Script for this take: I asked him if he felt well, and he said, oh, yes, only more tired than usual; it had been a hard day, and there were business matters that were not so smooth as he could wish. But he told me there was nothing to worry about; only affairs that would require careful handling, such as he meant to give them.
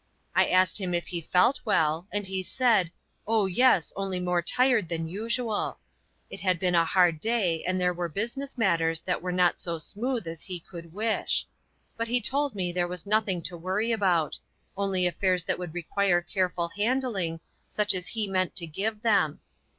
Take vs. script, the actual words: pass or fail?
pass